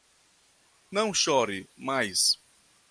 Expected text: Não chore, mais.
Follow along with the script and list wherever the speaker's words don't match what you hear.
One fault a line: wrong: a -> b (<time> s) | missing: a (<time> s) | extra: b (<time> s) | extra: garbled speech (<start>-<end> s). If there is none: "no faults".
no faults